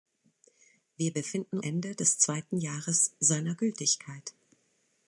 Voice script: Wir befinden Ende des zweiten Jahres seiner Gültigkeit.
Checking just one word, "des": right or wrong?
right